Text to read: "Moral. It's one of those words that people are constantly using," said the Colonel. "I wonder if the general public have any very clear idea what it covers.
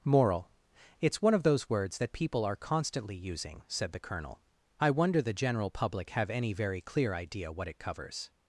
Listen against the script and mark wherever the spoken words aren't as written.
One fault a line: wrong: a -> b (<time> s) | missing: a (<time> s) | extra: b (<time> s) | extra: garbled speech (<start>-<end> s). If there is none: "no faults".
missing: if (5.2 s)